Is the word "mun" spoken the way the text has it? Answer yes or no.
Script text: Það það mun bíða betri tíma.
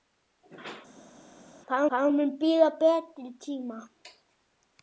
yes